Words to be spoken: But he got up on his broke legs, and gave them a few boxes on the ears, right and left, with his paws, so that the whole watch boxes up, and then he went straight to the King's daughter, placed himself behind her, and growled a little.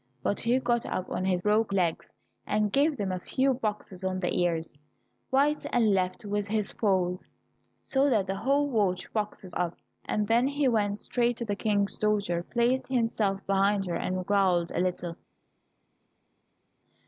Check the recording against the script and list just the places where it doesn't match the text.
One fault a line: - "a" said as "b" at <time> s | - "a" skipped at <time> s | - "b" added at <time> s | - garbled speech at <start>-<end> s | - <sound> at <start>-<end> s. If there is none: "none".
none